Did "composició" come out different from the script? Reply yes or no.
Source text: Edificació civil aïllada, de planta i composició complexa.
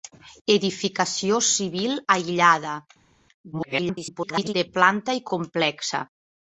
yes